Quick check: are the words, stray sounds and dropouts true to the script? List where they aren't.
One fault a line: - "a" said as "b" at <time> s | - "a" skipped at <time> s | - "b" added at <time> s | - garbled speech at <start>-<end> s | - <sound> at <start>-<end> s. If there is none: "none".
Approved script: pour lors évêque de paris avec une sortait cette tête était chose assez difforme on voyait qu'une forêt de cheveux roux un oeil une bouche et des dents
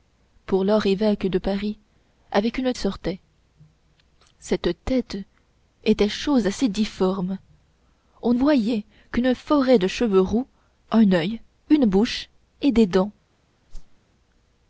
- whoosh at 13.7-14.0 s